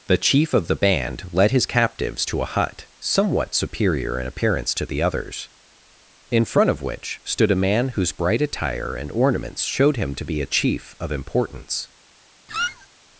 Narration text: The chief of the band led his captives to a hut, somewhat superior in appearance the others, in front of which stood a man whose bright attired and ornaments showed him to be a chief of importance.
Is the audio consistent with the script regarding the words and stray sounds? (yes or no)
no